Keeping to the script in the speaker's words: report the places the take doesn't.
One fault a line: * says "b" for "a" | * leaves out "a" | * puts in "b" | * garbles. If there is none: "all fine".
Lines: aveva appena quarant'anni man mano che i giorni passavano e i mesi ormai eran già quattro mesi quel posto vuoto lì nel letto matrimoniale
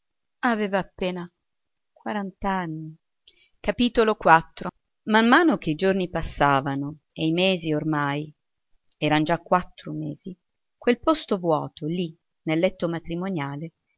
all fine